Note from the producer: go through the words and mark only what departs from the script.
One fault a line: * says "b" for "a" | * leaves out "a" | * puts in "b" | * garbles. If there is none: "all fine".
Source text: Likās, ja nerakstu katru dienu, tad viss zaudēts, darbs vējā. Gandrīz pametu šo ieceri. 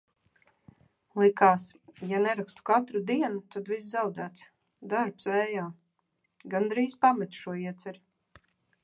all fine